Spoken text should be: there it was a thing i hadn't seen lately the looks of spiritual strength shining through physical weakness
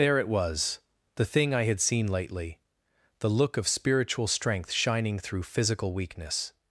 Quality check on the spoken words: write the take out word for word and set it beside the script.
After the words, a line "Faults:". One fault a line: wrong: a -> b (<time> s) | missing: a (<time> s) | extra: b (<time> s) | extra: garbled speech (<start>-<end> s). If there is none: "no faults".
there it was the thing i had seen lately the look of spiritual strength shining through physical weakness
Faults:
wrong: a -> the (1.1 s)
wrong: hadn't -> had (1.6 s)
wrong: looks -> look (3.3 s)